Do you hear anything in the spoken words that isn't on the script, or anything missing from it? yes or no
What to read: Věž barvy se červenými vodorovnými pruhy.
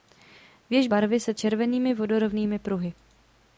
no